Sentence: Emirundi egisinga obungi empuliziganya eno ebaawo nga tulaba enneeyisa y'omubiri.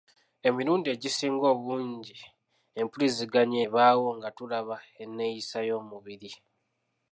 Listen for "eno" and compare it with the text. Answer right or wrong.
wrong